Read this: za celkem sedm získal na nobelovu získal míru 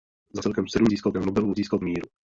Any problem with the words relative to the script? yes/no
no